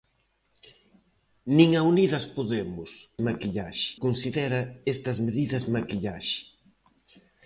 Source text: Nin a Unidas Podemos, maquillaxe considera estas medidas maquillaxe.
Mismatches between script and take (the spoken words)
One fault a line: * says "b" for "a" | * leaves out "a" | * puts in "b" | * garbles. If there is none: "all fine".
all fine